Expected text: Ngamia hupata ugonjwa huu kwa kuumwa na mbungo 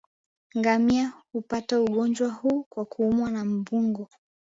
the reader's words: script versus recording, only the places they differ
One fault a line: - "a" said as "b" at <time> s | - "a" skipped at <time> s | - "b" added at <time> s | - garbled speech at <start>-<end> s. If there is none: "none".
none